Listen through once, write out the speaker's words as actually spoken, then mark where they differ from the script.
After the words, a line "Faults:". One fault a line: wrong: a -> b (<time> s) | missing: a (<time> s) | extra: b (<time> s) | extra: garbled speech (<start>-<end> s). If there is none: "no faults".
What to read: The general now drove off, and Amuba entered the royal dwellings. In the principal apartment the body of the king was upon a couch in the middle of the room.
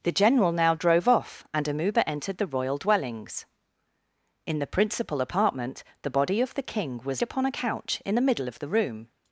The general now drove off, and Amuba entered the royal dwellings. In the principal apartment the body of the king was upon a couch in the middle of the room.
Faults:
no faults